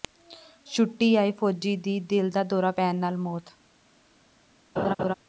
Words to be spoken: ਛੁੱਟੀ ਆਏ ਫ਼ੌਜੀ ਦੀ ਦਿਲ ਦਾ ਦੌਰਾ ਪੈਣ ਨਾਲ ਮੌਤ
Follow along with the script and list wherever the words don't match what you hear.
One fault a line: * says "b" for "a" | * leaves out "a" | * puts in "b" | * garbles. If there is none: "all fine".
all fine